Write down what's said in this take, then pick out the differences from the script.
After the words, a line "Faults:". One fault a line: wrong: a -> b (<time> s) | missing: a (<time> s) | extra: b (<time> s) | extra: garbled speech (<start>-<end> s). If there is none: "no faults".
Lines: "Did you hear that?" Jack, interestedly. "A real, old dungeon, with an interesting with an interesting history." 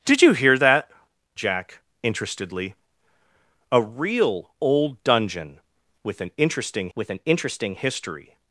"Did you hear that?" Jack, interestedly. "A real, old dungeon, with an interesting with an interesting history."
Faults:
no faults